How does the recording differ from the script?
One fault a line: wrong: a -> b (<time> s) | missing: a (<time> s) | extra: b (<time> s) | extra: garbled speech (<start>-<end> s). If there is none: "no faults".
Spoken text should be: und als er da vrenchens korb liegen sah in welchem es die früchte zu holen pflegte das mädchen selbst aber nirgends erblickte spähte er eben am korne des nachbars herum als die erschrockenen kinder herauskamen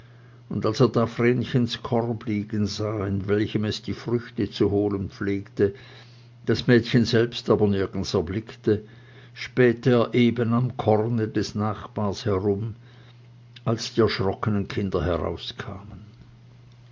no faults